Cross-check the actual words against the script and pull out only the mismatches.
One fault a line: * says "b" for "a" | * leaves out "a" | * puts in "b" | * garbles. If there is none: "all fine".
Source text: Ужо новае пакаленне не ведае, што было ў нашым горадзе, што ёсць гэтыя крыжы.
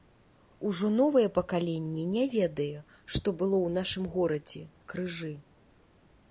* leaves out "што ёсць гэтыя"